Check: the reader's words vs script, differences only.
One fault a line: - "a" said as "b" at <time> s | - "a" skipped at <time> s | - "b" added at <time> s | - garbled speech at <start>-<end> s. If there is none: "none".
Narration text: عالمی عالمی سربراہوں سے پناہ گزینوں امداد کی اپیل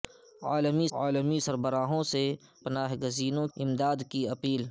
none